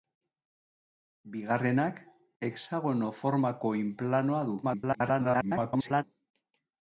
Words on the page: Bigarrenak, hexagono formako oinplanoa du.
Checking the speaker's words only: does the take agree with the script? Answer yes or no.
no